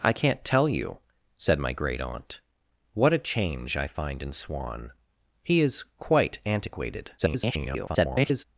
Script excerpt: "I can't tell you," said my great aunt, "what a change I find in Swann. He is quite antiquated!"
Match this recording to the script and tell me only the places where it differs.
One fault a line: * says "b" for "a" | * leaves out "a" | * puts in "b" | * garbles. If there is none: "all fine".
* garbles